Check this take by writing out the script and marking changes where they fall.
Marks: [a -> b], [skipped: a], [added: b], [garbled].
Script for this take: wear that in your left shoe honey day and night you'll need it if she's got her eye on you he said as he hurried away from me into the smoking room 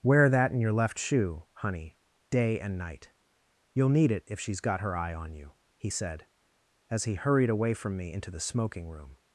wear that in your left shoe honey day and night you'll need it if she's got her eye on you he said as he hurried away from me into the smoking room